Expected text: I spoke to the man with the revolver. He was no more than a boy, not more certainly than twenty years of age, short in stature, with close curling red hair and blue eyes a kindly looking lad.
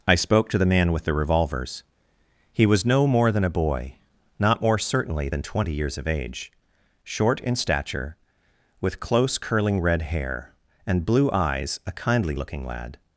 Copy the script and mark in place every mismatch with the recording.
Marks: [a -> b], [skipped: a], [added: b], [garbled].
I spoke to the man with the [revolver. -> revolvers] He was no more than a boy, not more certainly than twenty years of age, short in stature, with close curling red hair and blue eyes a kindly looking lad.